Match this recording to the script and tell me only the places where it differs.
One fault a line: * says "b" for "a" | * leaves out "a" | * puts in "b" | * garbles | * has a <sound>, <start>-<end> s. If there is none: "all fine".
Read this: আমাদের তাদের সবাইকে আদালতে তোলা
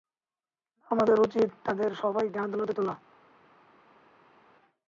* puts in "উচিত"